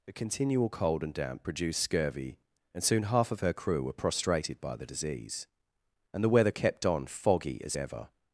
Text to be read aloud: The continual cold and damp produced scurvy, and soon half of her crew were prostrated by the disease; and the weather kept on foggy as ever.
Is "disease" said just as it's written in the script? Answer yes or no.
yes